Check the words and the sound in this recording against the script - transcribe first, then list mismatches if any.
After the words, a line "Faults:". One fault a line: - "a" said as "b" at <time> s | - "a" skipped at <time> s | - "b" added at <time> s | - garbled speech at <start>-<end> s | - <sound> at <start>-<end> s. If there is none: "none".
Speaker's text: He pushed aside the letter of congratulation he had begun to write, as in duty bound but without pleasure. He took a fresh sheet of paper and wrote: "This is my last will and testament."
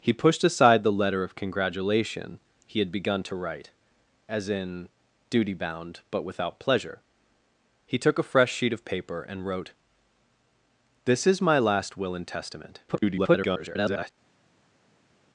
He pushed aside the letter of congratulation he had begun to write, as in duty bound but without pleasure. He took a fresh sheet of paper and wrote: "This is my last will and testament." [garbled]
Faults:
- garbled speech at 12.9-14.1 s